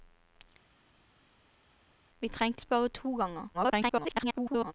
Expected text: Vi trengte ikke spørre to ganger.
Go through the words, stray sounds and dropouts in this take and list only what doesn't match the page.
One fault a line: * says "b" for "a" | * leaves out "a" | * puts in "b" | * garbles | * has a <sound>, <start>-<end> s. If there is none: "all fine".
* leaves out "ikke"
* garbles